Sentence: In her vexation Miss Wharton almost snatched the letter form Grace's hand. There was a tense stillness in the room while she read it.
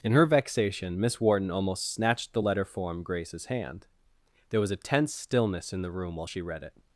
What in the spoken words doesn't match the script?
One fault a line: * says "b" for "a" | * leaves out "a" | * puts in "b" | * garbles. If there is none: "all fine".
all fine